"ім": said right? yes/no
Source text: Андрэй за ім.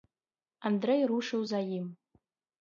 yes